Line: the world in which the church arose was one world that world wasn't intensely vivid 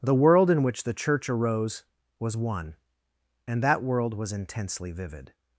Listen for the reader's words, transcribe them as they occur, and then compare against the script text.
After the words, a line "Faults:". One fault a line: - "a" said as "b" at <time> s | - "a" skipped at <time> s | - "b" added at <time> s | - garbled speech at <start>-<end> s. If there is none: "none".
the world in which the church arose was one and that world was intensely vivid
Faults:
- "world" said as "and" at 3.5 s
- "wasn't" said as "was" at 4.1 s